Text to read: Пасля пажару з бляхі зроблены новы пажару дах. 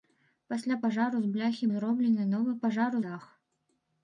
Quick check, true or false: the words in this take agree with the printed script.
true